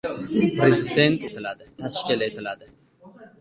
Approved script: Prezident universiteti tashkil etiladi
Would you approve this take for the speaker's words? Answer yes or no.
no